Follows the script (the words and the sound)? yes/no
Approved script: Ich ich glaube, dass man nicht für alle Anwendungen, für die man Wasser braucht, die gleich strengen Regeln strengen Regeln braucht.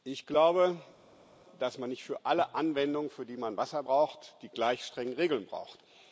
no